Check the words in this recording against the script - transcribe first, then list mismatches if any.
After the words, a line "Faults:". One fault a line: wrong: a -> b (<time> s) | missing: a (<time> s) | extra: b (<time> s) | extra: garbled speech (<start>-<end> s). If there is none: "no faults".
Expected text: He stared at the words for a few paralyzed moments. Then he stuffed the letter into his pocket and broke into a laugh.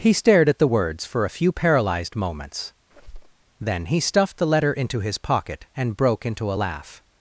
He stared at the words for a few paralyzed moments. Then he stuffed the letter into his pocket and broke into a laugh.
Faults:
no faults